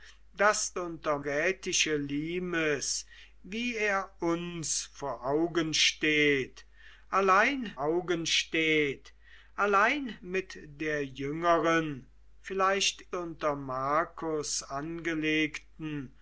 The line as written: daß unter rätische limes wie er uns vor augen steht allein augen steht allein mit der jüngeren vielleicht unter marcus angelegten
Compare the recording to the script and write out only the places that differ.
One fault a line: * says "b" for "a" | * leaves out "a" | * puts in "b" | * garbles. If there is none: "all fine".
all fine